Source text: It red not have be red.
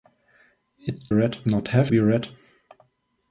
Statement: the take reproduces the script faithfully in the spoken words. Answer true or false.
true